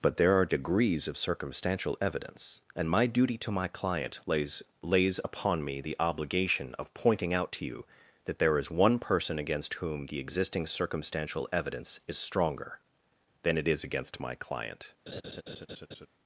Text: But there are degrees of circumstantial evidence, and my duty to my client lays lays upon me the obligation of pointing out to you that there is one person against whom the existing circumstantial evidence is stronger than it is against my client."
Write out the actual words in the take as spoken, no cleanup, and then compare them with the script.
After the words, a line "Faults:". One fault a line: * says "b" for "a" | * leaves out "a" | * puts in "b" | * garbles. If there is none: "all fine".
But there are degrees of circumstantial evidence, and my duty to my client lays lays upon me the obligation of pointing out to you that there is one person against whom the existing circumstantial evidence is stronger than it is against my client."
Faults:
all fine